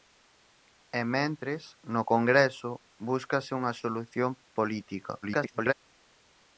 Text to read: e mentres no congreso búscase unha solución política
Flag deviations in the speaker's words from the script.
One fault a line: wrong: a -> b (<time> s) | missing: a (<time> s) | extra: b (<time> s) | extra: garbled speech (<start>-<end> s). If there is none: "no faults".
extra: garbled speech (5.2-5.7 s)